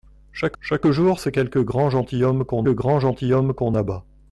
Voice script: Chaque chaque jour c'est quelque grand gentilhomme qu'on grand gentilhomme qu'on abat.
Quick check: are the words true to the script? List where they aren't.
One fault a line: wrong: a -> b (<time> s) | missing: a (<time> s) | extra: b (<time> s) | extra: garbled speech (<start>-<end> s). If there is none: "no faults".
no faults